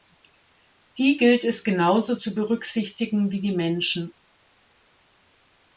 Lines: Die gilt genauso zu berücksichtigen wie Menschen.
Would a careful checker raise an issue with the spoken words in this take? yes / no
yes